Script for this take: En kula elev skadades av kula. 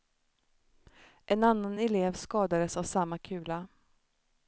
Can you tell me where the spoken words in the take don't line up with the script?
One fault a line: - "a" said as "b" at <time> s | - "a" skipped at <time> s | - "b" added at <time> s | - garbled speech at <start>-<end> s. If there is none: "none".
- "kula" said as "annan" at 1.4 s
- "samma" added at 2.8 s